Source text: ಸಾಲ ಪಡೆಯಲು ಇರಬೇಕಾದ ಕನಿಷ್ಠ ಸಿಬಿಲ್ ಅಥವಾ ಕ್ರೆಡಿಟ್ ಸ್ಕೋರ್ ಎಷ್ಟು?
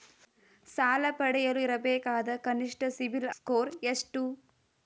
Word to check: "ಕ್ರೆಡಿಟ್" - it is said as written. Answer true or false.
false